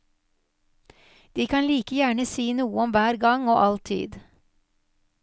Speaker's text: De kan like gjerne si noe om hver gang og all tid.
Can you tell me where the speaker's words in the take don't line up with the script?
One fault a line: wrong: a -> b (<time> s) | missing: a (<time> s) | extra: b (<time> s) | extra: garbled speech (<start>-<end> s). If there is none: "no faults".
no faults